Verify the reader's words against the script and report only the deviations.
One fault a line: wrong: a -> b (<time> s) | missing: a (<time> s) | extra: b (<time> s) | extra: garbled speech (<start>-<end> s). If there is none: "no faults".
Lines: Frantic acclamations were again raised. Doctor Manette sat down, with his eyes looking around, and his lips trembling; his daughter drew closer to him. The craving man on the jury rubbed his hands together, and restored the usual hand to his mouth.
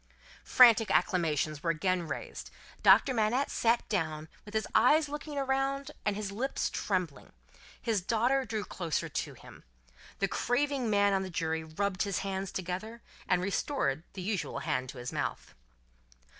no faults